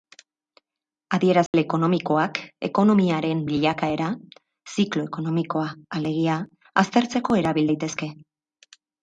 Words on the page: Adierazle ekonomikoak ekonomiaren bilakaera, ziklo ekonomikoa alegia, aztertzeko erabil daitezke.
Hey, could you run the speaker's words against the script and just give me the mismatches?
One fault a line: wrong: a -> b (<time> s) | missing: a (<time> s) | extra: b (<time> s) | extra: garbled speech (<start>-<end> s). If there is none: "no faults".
no faults